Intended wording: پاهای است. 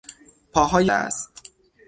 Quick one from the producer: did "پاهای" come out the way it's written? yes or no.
yes